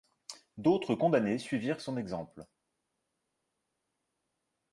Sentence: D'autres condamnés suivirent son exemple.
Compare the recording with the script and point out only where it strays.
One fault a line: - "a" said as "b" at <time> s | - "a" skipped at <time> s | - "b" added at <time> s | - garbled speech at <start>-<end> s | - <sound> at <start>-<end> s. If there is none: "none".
none